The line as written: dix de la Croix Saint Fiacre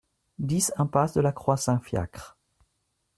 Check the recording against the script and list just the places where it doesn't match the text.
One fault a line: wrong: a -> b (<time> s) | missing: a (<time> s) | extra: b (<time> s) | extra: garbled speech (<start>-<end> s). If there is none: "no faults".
extra: impasse (0.8 s)